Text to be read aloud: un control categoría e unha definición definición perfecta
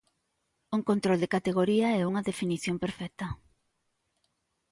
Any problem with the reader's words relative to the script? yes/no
yes